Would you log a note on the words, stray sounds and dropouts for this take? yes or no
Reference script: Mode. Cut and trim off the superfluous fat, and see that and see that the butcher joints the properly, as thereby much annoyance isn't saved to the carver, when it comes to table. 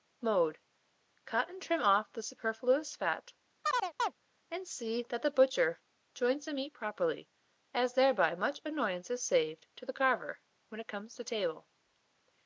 yes